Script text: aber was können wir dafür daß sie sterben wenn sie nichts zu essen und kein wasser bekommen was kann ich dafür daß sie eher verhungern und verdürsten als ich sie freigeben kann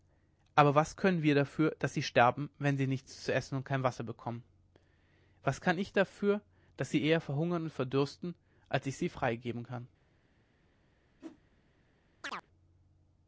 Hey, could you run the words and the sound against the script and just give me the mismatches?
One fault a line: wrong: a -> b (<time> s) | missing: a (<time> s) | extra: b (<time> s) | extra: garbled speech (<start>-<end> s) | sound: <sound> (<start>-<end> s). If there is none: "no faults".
sound: whoosh (11.2-11.4 s)
sound: chirp (12.2-12.5 s)